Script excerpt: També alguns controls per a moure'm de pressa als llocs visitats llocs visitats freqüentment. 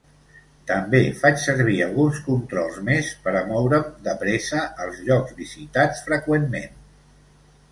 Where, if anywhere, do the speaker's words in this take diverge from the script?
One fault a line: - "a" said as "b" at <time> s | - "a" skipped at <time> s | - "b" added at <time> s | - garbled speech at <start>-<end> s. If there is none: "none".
- "faig servir" added at 1.2 s
- "més" added at 2.9 s
- "llocs visitats" skipped at 6.0 s